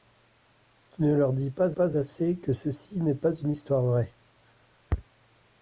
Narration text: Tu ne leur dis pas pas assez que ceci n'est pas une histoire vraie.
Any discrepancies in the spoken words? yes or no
no